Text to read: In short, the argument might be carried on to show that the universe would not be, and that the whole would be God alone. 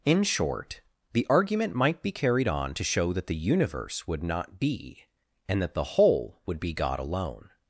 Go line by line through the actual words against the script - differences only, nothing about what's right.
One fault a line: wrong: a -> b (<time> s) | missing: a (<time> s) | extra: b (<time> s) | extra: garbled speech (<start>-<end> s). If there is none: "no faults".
no faults